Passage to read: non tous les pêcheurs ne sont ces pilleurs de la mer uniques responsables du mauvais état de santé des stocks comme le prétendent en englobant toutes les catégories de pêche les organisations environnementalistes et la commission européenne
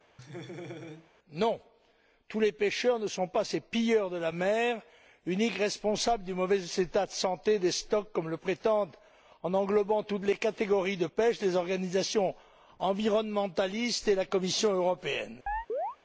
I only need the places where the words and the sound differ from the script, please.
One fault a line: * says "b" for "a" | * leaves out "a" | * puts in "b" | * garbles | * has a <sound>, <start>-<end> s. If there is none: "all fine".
* has a laugh, 0.2-1.1 s
* puts in "pas"
* has a chirp, 15.5-16.0 s